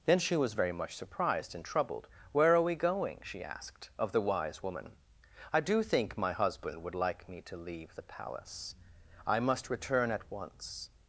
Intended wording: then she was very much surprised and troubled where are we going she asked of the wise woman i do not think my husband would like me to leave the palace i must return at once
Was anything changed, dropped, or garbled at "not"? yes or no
yes